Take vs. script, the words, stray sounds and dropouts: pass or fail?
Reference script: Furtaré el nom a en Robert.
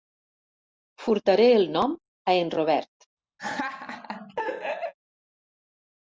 fail